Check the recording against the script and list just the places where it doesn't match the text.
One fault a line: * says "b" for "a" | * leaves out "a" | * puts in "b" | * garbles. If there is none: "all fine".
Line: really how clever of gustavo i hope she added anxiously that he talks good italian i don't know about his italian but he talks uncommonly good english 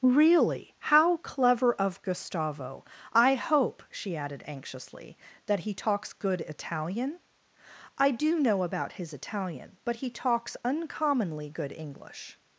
* says "do" for "don't"